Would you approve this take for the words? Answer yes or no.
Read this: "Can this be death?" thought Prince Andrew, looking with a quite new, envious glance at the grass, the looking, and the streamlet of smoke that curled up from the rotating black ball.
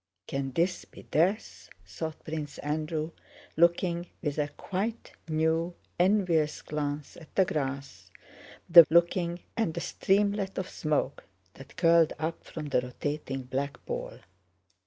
yes